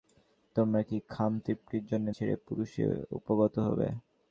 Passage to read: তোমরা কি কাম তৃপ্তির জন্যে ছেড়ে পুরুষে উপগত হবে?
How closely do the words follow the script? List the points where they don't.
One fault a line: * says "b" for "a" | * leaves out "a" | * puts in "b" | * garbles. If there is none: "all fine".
all fine